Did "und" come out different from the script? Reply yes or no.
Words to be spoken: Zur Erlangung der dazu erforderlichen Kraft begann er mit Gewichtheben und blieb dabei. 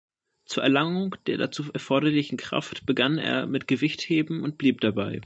no